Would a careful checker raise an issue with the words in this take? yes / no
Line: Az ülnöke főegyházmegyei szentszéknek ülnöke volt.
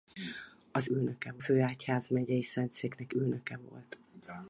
no